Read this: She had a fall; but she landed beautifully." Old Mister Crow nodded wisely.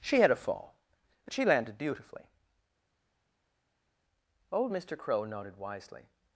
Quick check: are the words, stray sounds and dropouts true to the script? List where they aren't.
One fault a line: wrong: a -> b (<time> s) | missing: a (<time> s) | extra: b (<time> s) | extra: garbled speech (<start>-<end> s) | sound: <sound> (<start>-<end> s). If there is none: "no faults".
no faults